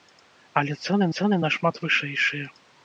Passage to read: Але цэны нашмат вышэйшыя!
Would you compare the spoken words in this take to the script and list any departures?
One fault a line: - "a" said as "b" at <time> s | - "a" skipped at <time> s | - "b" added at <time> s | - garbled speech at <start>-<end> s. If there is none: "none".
- "цэны" added at 1.2 s